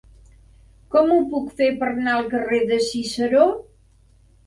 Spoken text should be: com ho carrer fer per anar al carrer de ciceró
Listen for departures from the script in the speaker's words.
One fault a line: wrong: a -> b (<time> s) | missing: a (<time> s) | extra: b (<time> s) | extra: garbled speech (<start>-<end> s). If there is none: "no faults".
wrong: carrer -> puc (1.3 s)